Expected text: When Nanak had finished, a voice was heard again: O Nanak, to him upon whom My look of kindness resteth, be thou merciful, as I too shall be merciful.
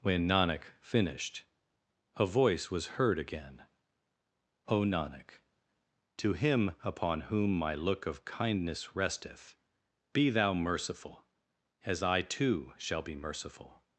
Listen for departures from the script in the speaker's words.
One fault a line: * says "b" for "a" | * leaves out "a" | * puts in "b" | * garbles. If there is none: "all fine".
* leaves out "had"